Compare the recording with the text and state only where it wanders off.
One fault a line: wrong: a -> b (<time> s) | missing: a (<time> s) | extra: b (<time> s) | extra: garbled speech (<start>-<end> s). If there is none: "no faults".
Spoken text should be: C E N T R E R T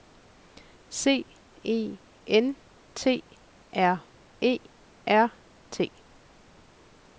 no faults